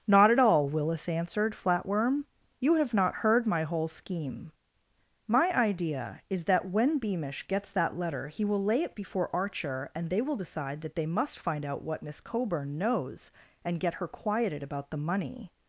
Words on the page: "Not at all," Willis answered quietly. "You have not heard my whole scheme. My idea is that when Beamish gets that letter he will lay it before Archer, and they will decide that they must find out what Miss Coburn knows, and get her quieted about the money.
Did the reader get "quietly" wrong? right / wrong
wrong